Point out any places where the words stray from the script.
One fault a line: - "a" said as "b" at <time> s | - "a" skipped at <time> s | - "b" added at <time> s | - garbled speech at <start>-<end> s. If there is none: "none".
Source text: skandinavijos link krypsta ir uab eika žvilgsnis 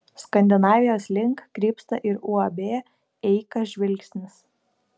none